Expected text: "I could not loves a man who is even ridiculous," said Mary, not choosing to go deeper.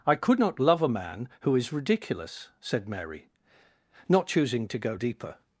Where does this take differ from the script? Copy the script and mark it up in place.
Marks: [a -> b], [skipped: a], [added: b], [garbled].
"I could not [loves -> love] a man who is [skipped: even] ridiculous," said Mary, not choosing to go deeper.